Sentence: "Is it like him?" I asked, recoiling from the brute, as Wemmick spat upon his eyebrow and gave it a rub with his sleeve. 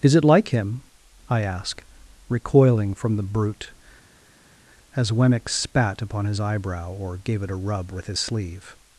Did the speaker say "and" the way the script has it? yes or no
no